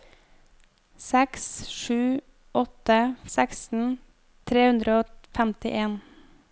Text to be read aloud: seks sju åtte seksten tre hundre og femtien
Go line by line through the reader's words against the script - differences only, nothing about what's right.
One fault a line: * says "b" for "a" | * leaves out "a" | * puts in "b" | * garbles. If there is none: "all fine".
all fine